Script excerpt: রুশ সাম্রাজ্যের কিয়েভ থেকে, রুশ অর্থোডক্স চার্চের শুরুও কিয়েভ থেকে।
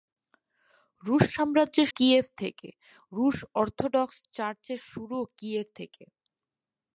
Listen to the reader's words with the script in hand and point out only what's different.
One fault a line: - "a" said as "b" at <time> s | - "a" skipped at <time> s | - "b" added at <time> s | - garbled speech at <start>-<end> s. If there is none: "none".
none